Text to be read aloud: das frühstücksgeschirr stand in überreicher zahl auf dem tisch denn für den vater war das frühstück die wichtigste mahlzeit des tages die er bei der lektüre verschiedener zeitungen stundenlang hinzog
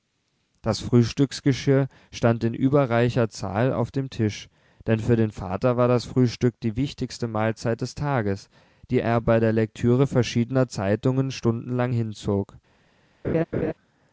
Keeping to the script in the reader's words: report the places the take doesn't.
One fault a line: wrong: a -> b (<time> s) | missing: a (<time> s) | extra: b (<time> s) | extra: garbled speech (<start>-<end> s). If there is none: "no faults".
no faults